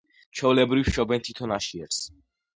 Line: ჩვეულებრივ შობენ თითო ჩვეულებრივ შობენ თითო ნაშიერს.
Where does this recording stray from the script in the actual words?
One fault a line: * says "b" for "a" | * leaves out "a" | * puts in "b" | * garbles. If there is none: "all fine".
* leaves out "ჩვეულებრივ შობენ თითო"